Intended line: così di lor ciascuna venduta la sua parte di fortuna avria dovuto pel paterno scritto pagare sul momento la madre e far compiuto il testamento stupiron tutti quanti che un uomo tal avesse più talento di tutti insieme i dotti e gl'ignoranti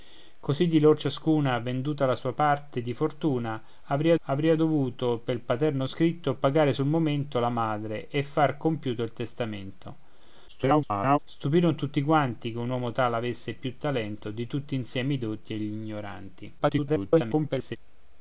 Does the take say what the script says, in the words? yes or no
no